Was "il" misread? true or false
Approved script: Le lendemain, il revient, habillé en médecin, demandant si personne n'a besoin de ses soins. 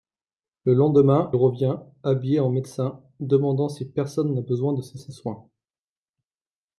true